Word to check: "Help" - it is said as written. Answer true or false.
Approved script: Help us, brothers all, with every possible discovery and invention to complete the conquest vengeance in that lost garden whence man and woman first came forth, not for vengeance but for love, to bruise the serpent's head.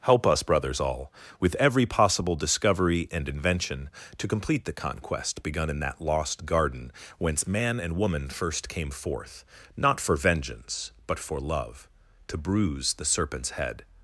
true